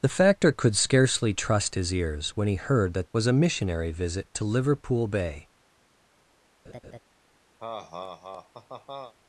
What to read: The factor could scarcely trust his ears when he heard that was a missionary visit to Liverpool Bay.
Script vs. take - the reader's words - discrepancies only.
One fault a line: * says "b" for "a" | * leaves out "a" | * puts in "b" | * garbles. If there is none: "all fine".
all fine